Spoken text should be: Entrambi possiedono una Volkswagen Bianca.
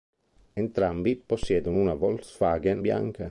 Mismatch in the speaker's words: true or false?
false